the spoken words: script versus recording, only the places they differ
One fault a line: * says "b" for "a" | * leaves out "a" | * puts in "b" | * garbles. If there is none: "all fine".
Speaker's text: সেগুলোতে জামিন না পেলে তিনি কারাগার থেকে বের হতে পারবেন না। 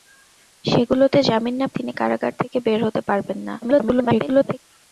* leaves out "পেলে"
* garbles